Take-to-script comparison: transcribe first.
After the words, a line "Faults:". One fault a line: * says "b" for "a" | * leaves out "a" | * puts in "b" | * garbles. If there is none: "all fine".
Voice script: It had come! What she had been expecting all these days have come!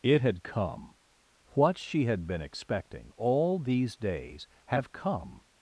It had come! What she had been expecting all these days have come!
Faults:
all fine